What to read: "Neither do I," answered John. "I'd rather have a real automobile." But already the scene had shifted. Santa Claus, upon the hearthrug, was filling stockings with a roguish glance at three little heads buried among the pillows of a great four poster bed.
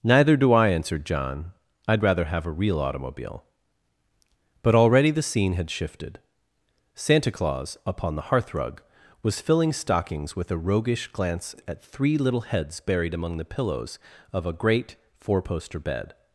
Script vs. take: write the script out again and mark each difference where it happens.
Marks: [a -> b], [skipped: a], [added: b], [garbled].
"Neither do I," answered John. "I'd rather have a real automobile." But already the scene had shifted. Santa Claus, upon the hearthrug, was filling stockings with a roguish glance at three little heads buried among the pillows of a great four poster bed.